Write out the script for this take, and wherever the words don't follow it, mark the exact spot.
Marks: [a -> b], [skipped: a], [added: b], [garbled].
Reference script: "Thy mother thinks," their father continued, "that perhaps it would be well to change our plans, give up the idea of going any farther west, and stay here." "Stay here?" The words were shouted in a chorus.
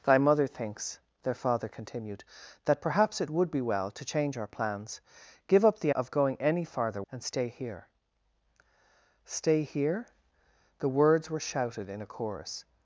"Thy mother thinks," their father continued, "that perhaps it would be well to change our plans, give up the [skipped: idea] of going any farther [skipped: west,] and stay here." "Stay here?" The words were shouted in a chorus.